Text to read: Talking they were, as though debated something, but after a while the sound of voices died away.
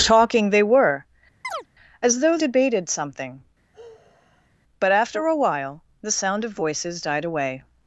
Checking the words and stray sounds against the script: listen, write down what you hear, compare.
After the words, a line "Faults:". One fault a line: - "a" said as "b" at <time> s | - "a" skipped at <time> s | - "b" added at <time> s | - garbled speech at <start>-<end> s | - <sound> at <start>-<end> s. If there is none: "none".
Talking they were, as though debated something, but after a while the sound of voices died away.
Faults:
- chirp at 1.4-1.7 s
- sigh at 3.7-4.5 s